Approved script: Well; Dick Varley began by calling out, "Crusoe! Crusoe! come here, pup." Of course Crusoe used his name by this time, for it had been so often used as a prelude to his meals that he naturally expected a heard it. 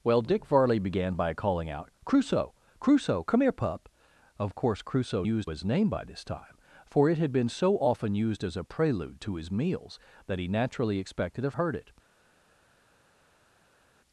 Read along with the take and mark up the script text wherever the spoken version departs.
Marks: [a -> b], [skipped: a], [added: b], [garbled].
Well; Dick Varley began by calling out, "Crusoe! Crusoe! come here, pup." Of course Crusoe used his name by this time, for it had been so often used as a prelude to his meals that he naturally expected a heard it.